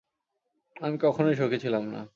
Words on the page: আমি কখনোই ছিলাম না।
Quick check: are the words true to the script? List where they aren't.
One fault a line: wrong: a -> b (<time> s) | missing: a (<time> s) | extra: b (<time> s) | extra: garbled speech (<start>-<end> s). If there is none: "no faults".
extra: সুখী (1.4 s)